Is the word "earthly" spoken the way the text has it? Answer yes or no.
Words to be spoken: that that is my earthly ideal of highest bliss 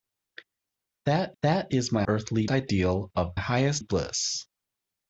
yes